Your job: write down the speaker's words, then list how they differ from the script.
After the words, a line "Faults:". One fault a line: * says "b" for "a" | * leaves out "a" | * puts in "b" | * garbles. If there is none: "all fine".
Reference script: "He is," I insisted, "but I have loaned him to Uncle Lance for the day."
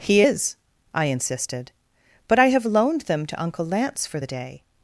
"He is," I insisted, "but I have loaned them to Uncle Lance for the day."
Faults:
* says "them" for "him"